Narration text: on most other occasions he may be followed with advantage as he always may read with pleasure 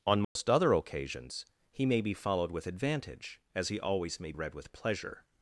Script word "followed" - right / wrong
right